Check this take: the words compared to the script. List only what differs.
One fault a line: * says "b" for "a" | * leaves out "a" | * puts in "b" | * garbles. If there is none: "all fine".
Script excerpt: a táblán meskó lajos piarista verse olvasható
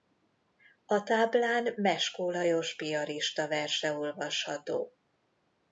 all fine